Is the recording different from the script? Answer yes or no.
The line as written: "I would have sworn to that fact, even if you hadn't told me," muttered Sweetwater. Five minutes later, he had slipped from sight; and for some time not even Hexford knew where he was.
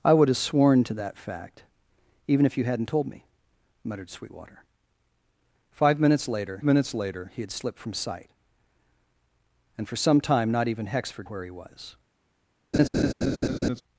yes